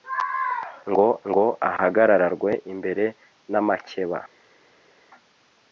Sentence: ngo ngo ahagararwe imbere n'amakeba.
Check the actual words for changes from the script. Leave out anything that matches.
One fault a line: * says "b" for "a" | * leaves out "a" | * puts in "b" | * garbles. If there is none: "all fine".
all fine